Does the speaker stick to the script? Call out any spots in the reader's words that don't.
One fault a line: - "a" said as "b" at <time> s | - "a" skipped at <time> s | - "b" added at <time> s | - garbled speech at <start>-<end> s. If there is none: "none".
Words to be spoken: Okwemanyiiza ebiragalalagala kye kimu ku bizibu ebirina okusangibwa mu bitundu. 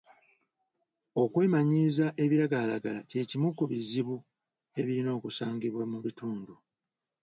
none